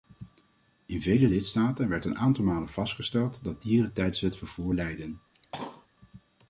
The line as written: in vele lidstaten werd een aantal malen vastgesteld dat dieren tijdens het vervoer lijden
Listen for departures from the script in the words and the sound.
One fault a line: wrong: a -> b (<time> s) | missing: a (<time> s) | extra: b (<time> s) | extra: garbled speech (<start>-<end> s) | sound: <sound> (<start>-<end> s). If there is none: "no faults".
sound: cough (5.3-5.9 s)